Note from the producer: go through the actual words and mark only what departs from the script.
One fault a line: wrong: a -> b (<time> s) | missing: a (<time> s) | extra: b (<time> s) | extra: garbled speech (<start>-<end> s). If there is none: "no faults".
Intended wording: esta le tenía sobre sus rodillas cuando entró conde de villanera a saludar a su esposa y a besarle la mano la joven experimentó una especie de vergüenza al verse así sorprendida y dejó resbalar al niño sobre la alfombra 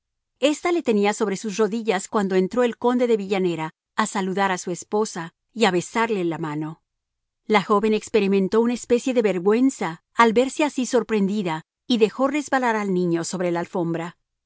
extra: el (2.6 s)